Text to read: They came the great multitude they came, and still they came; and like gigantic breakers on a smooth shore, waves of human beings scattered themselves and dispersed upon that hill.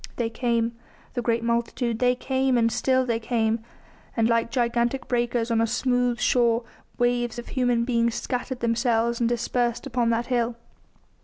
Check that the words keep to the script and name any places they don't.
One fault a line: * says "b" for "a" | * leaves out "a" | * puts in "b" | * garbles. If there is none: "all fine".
all fine